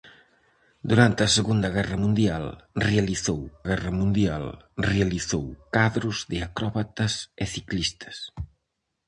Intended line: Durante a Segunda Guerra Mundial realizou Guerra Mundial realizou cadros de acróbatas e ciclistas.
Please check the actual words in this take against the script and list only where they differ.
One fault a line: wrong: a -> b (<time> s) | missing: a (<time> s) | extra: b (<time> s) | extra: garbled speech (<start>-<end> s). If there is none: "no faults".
no faults